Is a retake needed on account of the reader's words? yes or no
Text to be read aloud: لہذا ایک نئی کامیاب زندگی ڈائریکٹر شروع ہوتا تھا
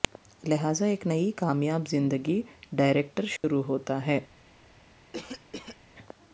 yes